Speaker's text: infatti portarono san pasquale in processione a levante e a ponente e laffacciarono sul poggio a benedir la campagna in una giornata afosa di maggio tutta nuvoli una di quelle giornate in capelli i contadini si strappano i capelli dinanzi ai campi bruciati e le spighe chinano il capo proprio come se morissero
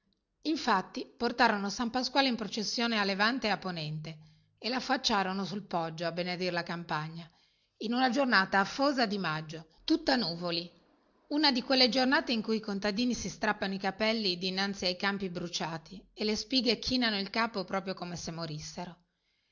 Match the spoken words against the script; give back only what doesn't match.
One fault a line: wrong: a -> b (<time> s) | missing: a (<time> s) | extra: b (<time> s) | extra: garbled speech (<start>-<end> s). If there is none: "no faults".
wrong: capelli -> cui (12.4 s)